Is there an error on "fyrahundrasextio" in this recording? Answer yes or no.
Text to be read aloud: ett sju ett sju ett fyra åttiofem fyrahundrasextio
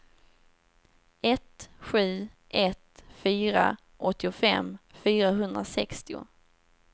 no